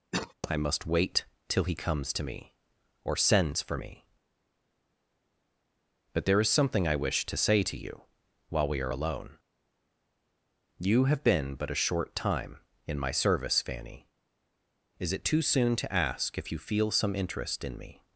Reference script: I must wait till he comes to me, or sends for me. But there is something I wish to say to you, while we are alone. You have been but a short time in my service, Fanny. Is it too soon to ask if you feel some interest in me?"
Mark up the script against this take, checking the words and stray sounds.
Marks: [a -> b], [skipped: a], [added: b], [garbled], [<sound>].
[cough] I must wait till he comes to me, or sends for me. But there is something I wish to say to you, while we are alone. You have been but a short time in my service, Fanny. Is it too soon to ask if you feel some interest in me?"